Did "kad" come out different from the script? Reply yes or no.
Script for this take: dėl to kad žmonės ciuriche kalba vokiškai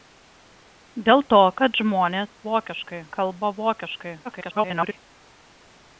no